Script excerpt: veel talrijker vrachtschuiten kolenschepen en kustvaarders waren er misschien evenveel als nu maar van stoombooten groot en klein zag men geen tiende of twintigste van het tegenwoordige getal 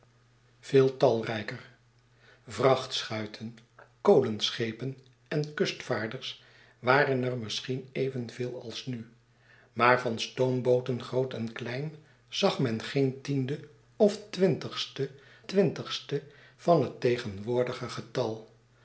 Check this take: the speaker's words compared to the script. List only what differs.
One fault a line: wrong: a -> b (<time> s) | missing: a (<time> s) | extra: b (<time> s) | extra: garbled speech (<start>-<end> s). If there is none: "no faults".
extra: twintigste (15.5 s)